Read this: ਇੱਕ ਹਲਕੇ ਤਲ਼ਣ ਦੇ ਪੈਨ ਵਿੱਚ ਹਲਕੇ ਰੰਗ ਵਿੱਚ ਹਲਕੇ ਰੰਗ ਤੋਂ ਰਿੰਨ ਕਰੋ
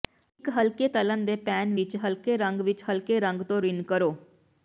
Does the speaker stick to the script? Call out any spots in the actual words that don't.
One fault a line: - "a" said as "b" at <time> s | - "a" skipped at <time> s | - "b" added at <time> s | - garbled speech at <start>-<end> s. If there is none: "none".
none